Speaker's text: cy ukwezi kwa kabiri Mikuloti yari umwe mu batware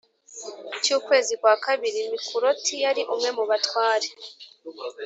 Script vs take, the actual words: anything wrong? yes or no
no